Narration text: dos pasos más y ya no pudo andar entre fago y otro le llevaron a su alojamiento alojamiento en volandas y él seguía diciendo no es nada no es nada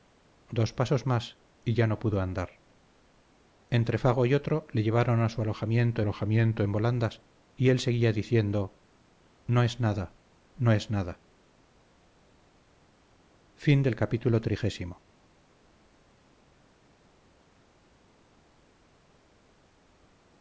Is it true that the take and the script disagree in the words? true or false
false